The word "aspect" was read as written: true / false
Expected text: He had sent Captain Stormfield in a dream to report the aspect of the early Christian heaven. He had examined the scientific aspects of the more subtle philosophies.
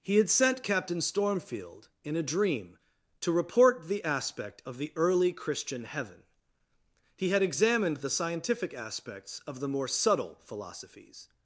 true